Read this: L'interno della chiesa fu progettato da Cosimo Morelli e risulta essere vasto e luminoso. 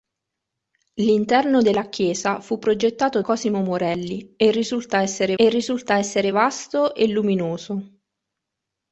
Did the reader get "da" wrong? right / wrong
wrong